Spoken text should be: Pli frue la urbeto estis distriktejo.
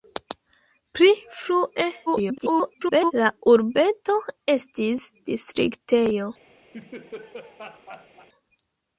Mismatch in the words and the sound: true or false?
true